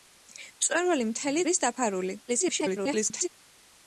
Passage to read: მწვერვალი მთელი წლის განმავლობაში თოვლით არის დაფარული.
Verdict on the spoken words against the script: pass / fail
fail